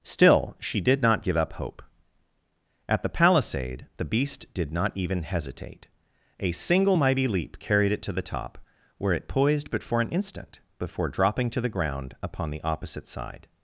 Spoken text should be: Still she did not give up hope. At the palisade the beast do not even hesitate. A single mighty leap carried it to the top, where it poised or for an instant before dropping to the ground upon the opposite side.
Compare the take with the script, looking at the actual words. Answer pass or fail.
fail